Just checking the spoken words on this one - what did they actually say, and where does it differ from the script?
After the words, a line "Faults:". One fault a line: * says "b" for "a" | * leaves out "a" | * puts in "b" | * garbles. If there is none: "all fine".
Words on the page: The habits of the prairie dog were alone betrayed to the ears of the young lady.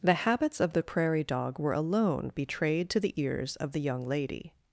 The habits of the prairie dog were alone betrayed to the ears of the young lady.
Faults:
all fine